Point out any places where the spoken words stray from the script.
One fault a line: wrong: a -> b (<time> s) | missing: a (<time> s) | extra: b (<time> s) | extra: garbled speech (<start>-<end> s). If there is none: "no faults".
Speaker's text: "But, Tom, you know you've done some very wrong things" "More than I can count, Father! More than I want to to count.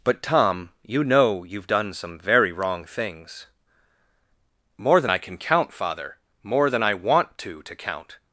no faults